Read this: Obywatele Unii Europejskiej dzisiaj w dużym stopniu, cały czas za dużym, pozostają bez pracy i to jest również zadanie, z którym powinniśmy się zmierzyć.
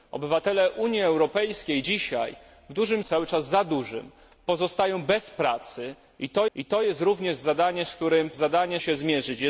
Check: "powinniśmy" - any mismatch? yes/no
yes